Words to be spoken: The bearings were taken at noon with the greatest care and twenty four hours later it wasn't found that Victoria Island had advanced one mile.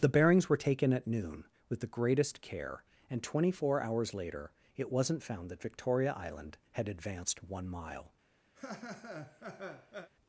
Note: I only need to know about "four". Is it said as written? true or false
true